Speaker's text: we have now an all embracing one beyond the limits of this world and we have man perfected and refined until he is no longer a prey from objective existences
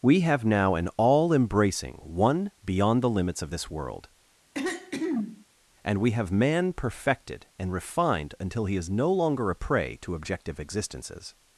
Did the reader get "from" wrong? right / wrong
wrong